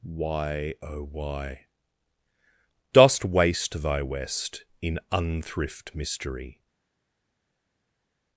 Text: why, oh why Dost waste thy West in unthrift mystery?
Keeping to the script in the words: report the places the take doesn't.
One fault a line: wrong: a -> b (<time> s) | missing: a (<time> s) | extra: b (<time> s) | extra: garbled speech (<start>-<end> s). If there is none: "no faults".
no faults